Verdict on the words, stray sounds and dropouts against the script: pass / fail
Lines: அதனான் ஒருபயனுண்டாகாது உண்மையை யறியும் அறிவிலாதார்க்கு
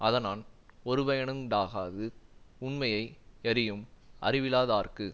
pass